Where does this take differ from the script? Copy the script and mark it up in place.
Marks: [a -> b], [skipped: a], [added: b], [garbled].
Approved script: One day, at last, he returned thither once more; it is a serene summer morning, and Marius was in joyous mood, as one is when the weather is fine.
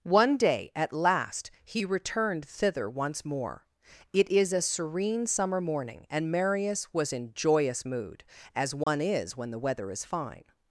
One day, at last, he returned thither once more; it is a serene summer morning, and Marius was in joyous mood, as one is when the weather is fine.